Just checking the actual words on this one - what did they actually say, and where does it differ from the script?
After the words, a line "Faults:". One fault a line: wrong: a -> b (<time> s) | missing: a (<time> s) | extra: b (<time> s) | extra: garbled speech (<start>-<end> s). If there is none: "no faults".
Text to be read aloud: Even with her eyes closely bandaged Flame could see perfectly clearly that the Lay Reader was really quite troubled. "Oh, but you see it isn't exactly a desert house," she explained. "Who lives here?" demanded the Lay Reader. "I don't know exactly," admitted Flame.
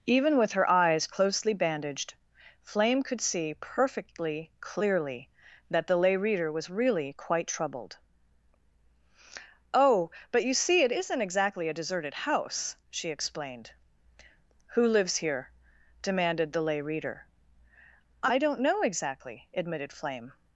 Even with her eyes closely bandaged Flame could see perfectly clearly that the Lay Reader was really quite troubled. "Oh, but you see it isn't exactly a deserted house," she explained. "Who lives here?" demanded the Lay Reader. "I don't know exactly," admitted Flame.
Faults:
wrong: desert -> deserted (11.8 s)